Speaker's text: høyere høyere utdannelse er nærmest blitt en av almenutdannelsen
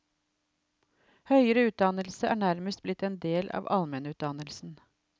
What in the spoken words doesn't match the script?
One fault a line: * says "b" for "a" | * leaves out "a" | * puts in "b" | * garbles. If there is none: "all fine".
* leaves out "høyere"
* puts in "del"